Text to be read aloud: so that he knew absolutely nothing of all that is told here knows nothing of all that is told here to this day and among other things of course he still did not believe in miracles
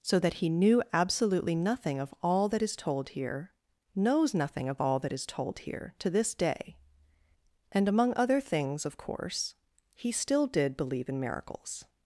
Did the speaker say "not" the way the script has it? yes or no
no